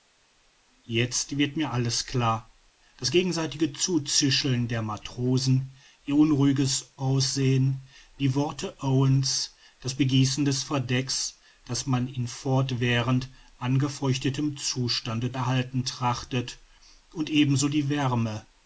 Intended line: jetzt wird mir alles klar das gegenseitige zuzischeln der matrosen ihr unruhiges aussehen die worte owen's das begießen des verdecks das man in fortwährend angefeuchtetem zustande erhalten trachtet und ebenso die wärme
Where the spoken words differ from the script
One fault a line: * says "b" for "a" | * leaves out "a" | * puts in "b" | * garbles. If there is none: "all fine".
all fine